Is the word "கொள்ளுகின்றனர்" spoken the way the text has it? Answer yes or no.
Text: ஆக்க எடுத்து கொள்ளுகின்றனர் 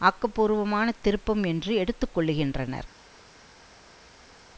yes